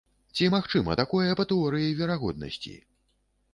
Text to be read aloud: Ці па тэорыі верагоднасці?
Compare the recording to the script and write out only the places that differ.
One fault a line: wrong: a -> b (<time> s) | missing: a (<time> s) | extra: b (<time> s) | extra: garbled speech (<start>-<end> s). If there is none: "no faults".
extra: магчыма такое (0.5 s)